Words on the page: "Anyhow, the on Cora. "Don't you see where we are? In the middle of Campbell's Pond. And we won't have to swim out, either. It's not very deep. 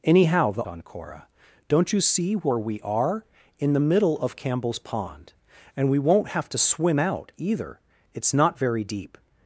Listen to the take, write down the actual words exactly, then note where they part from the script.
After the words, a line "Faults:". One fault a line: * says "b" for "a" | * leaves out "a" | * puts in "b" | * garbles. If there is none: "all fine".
"Anyhow, the on Cora. "Don't you see where we are? In the middle of Campbell's Pond. And we won't have to swim out, either. It's not very deep.
Faults:
all fine